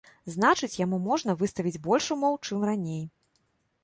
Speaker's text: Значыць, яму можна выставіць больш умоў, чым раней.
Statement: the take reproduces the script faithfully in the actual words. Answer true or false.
true